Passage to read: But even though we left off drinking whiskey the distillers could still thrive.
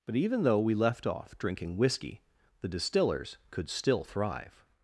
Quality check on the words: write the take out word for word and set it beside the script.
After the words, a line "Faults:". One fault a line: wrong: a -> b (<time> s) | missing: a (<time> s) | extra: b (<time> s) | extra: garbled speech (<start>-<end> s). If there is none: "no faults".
But even though we left off drinking whiskey the distillers could still thrive.
Faults:
no faults